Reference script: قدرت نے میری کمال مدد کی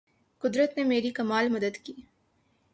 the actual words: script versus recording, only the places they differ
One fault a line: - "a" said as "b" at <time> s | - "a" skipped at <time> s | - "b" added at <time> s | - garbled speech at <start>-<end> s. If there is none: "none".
none